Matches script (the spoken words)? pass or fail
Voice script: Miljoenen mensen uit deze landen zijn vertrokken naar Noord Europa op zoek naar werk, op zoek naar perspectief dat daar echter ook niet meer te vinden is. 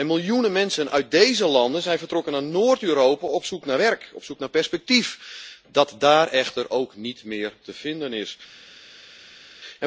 pass